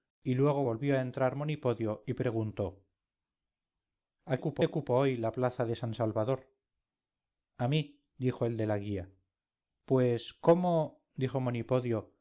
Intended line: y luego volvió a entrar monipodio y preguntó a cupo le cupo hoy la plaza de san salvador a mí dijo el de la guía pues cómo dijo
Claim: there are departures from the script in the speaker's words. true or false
false